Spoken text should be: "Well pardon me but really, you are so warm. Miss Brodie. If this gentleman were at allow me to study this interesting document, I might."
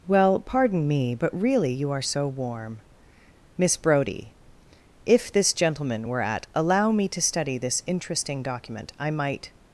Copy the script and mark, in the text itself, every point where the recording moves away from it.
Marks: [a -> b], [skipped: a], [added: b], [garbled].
"Well pardon me but really, you are so warm. Miss Brodie. If this gentleman were at allow me to study this interesting document, I might."